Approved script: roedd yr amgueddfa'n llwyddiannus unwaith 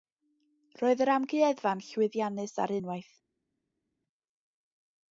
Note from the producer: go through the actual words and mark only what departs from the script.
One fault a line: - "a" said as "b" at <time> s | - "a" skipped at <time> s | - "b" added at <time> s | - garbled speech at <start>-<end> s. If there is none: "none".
- "ar" added at 2.6 s